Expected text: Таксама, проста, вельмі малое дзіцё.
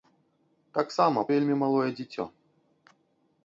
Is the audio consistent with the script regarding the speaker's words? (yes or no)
no